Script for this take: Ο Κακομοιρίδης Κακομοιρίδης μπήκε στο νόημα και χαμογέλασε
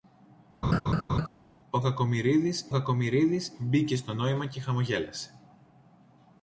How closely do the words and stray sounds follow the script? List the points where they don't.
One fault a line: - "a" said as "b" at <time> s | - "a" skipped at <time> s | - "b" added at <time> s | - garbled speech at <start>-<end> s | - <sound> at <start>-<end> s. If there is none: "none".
- laugh at 0.6-1.3 s